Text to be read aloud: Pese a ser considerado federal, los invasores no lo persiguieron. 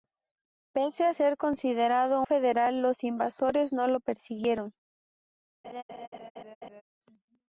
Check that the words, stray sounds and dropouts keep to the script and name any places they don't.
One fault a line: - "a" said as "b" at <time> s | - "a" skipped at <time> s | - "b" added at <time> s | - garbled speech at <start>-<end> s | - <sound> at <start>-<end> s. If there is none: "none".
- laugh at 5.6-6.8 s